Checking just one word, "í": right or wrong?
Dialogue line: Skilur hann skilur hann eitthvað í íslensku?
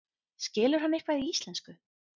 right